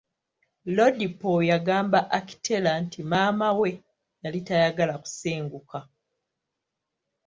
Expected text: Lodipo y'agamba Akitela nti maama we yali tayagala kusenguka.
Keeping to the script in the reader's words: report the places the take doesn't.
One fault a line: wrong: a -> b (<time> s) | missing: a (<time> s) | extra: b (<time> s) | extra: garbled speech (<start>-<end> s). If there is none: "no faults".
no faults